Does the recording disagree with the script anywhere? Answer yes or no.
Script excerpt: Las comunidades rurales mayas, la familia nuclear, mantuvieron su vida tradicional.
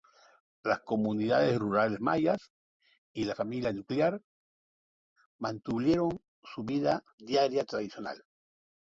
yes